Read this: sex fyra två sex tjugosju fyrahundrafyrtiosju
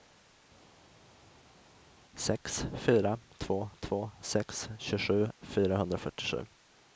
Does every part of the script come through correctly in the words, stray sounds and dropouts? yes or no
no